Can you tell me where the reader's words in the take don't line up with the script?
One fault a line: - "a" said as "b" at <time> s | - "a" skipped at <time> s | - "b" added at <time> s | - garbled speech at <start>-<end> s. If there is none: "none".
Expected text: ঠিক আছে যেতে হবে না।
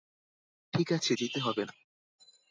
none